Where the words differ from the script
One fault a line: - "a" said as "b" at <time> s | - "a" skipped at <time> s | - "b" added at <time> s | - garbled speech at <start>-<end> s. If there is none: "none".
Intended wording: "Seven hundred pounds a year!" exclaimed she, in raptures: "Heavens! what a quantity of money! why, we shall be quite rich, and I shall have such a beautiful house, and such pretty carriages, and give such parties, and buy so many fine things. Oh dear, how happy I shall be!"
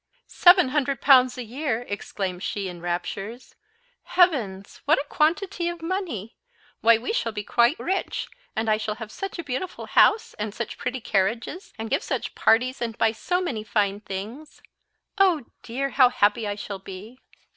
none